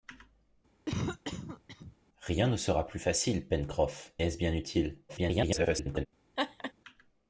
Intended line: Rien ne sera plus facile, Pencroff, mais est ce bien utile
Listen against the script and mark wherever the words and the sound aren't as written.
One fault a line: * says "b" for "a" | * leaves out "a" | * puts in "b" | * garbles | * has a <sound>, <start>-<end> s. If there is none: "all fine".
* has a cough, 0.9-2.0 s
* leaves out "mais"
* garbles
* has a laugh, 6.4-6.7 s